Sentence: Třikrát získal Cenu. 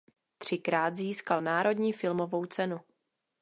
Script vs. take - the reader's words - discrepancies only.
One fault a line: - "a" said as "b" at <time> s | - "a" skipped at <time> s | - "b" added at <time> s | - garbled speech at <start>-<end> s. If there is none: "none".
- "Národní filmovou" added at 1.4 s